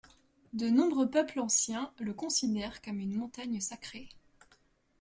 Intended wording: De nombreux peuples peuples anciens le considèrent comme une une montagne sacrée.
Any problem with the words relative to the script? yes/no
yes